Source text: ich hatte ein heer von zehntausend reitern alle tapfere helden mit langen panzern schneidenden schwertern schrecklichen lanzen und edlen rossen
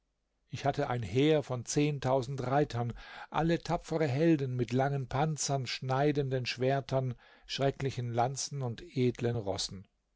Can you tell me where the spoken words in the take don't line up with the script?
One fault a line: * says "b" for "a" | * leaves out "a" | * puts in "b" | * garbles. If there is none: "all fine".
all fine